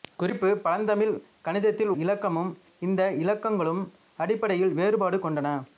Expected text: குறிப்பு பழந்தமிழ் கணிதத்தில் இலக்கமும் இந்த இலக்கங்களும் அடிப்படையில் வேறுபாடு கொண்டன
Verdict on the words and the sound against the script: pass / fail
pass